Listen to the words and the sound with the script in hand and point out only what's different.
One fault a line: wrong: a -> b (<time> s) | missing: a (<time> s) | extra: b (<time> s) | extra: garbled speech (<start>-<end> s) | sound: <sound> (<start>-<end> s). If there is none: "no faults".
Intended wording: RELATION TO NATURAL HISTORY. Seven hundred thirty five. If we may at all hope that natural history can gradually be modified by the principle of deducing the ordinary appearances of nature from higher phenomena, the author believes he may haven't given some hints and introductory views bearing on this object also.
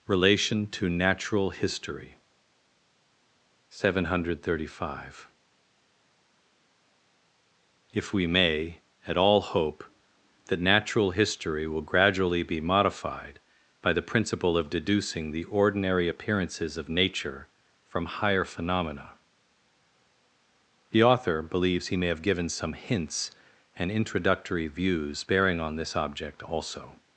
wrong: can -> will (11.7 s)
wrong: haven't -> have (22.1 s)